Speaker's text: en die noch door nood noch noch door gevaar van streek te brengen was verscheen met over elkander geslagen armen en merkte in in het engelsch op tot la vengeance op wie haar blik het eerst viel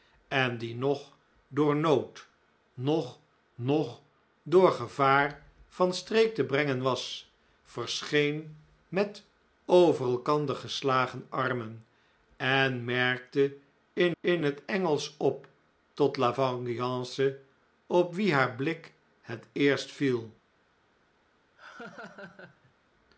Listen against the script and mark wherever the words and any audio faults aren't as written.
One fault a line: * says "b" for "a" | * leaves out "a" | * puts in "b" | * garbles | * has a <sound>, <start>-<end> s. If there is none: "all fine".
* has a laugh, 21.6-22.7 s